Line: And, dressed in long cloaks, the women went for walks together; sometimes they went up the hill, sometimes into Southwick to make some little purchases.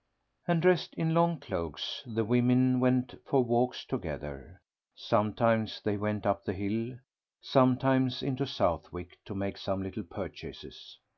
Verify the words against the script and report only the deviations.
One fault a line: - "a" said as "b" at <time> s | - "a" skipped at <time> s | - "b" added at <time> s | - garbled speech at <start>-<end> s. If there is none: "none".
none